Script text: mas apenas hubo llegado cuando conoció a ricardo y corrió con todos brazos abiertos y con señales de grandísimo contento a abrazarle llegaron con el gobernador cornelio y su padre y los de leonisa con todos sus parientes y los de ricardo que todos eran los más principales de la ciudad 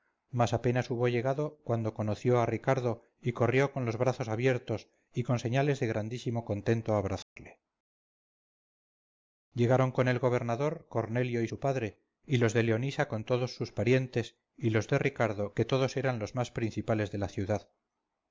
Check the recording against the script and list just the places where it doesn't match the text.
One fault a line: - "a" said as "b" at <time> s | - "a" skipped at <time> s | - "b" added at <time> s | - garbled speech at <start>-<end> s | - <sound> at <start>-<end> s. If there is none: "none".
- "todos" said as "los" at 3.9 s
- dropout at 7.2-7.4 s